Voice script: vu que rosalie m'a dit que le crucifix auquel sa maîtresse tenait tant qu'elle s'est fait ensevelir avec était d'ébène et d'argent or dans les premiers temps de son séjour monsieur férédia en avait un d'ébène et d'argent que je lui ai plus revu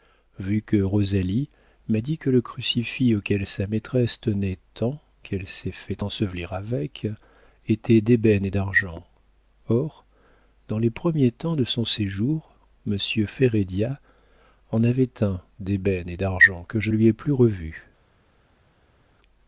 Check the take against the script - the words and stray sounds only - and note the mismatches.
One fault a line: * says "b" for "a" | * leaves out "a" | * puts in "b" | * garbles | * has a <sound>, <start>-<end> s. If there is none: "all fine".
all fine